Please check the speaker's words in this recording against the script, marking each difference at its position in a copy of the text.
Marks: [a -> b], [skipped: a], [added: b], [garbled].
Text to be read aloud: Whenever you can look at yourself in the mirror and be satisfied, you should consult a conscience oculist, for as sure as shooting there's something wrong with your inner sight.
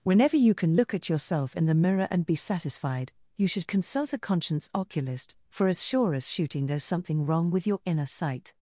Whenever you can look at yourself in the mirror and be satisfied, you should consult a conscience oculist, for as sure as shooting there's something wrong with your inner sight.